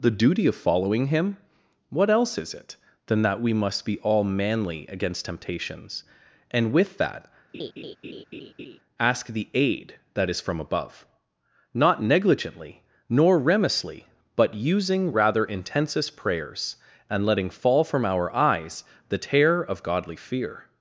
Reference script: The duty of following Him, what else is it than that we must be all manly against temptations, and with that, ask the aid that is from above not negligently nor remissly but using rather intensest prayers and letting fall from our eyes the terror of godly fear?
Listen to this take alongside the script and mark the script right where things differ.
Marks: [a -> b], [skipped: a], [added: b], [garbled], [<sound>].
The duty of following Him, what else is it than that we must be all manly against temptations, and with that, [laugh] ask the aid that is from above not negligently nor remissly but using rather intensest prayers and letting fall from our eyes the terror of godly fear?